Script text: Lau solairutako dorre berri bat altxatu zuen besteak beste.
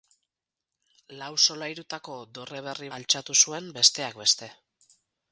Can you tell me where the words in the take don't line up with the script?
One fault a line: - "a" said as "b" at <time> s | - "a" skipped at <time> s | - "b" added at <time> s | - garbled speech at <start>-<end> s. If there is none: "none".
- "bat" skipped at 2.9 s